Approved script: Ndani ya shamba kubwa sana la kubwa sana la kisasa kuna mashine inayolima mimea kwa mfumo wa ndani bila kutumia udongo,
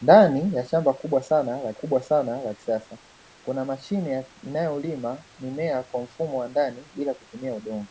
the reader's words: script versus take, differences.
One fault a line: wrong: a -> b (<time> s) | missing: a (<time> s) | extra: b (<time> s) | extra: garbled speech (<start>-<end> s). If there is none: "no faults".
no faults